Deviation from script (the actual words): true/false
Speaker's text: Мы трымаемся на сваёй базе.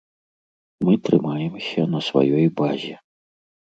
false